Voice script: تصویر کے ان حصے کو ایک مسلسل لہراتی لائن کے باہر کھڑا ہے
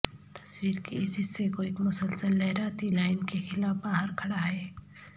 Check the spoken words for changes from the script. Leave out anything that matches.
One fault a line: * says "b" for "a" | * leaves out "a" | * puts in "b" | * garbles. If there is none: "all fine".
* says "اس" for "ان"
* puts in "خلاف"